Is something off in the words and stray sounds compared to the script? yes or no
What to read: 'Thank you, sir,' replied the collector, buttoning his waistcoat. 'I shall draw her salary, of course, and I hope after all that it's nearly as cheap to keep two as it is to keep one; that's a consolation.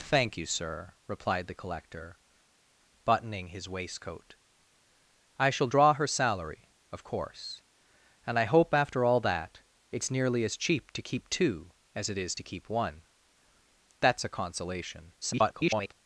yes